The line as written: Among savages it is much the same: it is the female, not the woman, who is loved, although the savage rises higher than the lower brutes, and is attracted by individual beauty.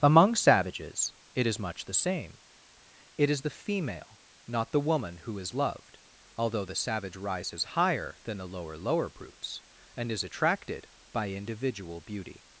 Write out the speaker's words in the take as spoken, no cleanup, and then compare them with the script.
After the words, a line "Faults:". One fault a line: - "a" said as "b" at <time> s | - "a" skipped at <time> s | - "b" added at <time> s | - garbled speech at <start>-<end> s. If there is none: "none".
Among savages it is much the same: it is the female, not the woman, who is loved, although the savage rises higher than the lower lower brutes, and is attracted by individual beauty.
Faults:
- "lower" added at 8.8 s